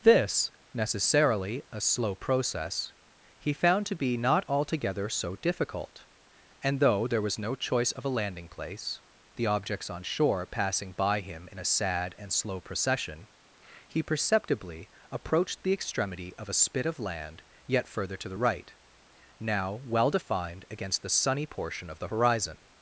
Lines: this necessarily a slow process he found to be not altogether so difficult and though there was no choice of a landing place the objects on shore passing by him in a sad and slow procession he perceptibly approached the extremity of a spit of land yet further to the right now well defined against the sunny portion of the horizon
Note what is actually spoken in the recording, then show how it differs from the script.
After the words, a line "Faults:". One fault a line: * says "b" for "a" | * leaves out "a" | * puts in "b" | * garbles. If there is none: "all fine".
this necessarily a slow process he found to be not altogether so difficult and though there was no choice of a landing place the objects on shore passing by him in a sad and slow procession he perceptibly approached the extremity of a spit of land yet further to the right now well defined against the sunny portion of the horizon
Faults:
all fine